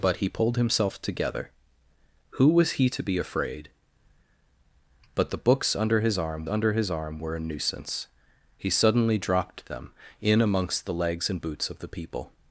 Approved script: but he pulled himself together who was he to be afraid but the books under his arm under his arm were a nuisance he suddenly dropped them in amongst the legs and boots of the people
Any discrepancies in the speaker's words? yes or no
no